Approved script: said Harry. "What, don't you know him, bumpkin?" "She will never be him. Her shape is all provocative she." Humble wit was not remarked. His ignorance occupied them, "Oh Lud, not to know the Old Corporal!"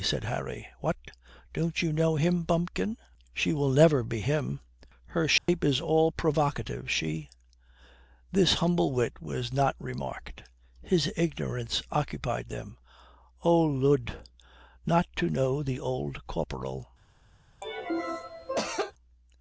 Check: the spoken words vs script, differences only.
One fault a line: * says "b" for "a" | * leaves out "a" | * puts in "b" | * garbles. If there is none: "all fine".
* puts in "This"